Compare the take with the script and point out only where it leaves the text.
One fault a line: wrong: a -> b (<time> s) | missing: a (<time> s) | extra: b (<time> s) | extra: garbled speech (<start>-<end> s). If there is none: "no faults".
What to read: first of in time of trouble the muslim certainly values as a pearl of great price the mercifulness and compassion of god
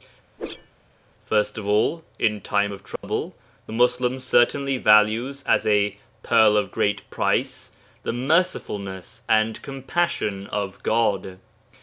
extra: all (1.7 s)